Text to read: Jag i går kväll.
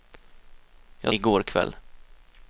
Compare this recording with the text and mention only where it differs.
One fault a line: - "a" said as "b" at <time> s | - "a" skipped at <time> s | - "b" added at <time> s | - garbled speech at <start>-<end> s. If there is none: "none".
none